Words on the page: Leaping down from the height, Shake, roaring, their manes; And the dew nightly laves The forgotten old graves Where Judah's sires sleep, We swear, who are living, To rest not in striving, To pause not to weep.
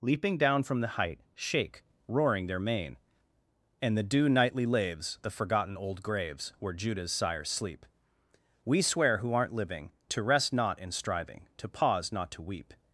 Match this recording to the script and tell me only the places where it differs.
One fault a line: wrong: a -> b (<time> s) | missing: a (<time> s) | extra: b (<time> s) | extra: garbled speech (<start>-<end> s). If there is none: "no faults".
wrong: manes -> mane (2.6 s)
wrong: are -> aren't (9.3 s)